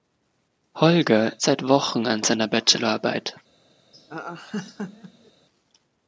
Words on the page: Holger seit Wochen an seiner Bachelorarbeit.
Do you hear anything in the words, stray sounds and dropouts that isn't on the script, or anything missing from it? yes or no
yes